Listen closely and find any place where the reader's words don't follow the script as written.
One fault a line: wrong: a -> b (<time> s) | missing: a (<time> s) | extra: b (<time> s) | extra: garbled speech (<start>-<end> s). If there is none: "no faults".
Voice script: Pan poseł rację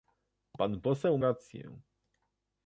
no faults